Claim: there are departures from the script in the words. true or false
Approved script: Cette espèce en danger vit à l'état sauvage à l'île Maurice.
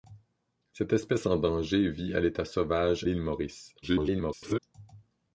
true